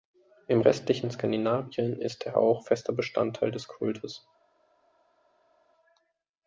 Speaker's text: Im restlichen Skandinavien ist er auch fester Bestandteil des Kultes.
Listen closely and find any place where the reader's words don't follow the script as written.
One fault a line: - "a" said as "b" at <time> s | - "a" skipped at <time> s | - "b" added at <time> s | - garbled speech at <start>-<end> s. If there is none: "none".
none